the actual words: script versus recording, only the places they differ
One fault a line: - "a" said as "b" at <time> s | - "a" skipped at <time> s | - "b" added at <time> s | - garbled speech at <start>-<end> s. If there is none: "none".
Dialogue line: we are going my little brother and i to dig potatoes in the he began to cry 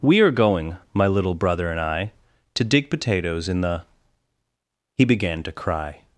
none